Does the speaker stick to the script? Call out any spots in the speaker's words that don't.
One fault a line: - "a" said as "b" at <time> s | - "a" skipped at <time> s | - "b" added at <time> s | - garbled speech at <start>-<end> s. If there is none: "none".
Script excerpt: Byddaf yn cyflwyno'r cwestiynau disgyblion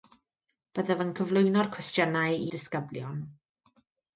none